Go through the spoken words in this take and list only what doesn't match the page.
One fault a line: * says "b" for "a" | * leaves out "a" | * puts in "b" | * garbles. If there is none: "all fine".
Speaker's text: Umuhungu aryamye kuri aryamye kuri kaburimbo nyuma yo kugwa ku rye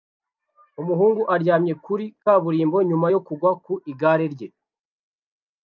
* leaves out "aryamye kuri"
* puts in "igare"